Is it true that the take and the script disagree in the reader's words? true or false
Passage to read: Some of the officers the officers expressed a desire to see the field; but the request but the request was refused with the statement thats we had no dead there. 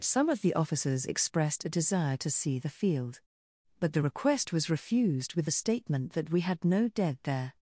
true